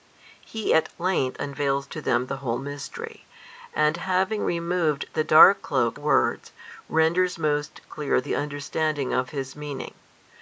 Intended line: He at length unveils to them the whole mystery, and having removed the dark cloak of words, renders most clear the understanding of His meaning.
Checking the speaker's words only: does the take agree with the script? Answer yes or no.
no